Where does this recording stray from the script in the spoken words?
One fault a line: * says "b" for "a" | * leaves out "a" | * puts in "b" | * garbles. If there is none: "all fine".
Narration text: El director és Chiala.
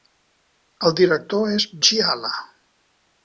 all fine